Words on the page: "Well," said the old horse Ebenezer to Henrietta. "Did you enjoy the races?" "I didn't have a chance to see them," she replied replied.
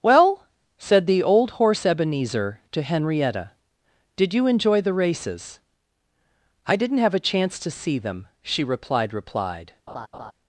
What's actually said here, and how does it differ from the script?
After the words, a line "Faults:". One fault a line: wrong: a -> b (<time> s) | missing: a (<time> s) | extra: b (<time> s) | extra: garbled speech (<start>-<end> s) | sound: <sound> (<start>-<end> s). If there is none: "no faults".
"Well," said the old horse Ebenezer to Henrietta. "Did you enjoy the races?" "I didn't have a chance to see them," she replied replied.
Faults:
sound: laugh (9.9-10.3 s)